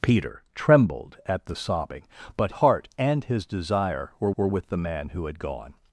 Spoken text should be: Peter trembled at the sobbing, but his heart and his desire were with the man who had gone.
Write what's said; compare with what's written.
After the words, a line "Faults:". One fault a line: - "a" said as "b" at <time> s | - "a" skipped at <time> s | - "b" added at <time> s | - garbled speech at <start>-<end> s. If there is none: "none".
Peter trembled at the sobbing, but heart and his desire were were with the man who had gone.
Faults:
- "his" skipped at 2.5 s
- "were" added at 4.3 s